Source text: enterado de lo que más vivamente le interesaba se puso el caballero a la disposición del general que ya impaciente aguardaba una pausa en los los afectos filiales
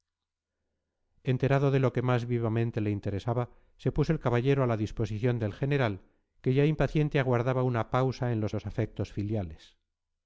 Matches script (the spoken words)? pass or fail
pass